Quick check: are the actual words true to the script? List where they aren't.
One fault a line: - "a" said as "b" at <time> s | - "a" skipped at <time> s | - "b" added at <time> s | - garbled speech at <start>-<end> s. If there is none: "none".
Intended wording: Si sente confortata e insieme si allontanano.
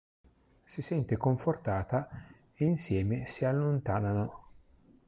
none